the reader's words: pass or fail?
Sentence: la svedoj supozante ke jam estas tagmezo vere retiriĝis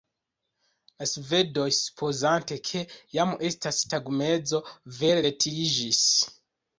pass